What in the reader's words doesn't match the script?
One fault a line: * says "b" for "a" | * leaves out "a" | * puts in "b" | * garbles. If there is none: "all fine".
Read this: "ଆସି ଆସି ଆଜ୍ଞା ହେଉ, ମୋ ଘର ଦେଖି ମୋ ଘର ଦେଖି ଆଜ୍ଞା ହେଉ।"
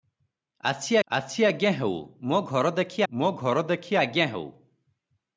all fine